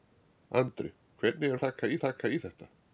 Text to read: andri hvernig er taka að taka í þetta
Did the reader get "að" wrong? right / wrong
right